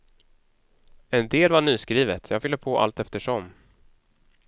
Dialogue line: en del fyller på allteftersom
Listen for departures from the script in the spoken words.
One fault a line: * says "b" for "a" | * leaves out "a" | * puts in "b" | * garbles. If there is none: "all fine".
* puts in "var nyskrivet jag"